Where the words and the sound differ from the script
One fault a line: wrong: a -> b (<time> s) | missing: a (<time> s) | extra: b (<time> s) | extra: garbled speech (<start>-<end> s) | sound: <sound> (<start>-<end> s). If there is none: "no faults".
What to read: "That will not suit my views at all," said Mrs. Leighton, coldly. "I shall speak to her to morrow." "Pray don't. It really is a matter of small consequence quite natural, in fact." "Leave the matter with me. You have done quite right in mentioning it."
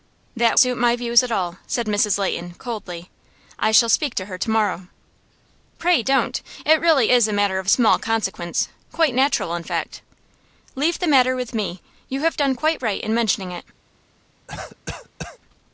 missing: will not (0.6 s)
sound: cough (14.5-15.4 s)